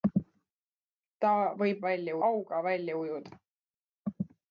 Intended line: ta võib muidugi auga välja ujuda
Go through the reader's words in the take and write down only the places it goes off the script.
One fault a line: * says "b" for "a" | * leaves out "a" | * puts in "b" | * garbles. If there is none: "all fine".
* says "välja" for "muidugi"